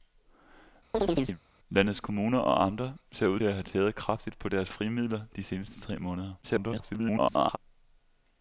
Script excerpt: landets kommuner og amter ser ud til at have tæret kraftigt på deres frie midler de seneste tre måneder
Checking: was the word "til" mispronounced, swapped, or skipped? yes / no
yes